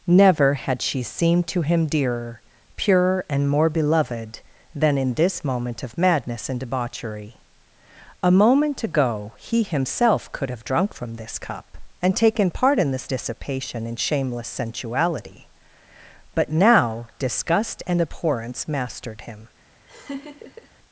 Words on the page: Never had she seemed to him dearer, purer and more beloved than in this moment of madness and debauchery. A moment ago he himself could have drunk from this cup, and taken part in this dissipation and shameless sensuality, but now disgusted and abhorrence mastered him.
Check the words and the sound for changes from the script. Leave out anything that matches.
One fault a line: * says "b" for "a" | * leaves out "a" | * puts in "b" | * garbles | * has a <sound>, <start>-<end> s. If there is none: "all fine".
* says "disgust" for "disgusted"
* has a laugh, 19.9-20.7 s